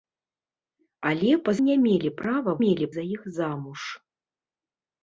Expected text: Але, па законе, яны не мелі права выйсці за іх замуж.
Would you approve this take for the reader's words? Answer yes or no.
no